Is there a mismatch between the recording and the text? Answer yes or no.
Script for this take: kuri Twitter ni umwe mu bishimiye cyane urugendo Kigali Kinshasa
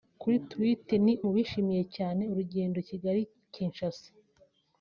yes